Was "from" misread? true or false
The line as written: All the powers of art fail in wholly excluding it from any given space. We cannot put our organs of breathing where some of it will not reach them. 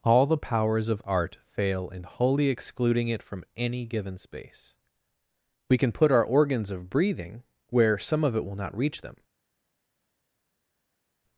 false